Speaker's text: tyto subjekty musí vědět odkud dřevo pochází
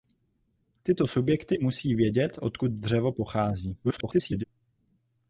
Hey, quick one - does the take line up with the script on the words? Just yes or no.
no